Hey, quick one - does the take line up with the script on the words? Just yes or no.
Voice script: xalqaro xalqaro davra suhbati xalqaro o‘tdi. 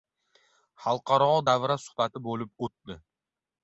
no